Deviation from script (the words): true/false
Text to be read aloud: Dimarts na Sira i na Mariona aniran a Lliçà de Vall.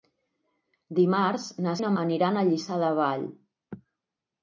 true